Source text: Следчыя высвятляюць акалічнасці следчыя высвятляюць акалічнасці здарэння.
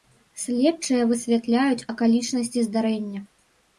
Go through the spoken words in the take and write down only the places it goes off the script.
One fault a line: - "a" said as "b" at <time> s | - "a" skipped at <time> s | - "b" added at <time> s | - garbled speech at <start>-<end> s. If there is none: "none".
- "следчыя высвятляюць акалічнасці" skipped at 2.6 s